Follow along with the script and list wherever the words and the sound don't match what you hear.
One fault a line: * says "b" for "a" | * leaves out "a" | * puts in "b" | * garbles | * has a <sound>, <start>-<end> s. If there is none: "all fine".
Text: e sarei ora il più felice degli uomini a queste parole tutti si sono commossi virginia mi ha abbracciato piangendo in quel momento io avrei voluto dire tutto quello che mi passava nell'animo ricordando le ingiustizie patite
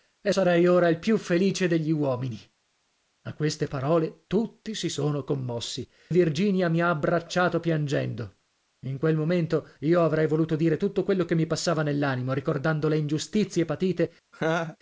* has a laugh, 14.3-14.8 s